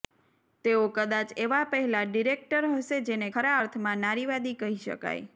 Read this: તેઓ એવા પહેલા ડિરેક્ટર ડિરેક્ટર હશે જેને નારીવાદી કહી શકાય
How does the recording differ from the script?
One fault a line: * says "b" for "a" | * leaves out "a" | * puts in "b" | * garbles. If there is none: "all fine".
* puts in "કદાચ"
* leaves out "ડિરેક્ટર"
* puts in "ખરા અર્થમાં"